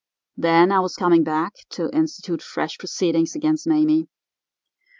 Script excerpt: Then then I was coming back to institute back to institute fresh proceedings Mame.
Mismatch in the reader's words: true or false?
true